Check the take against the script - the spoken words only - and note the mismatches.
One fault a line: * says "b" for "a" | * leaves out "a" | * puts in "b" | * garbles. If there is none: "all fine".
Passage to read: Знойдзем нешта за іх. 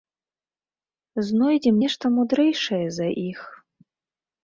* puts in "мудрэйшае"